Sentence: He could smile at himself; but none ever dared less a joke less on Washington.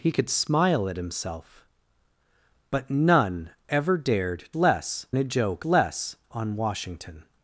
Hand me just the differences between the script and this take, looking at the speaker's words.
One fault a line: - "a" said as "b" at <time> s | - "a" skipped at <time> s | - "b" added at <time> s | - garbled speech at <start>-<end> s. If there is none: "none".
none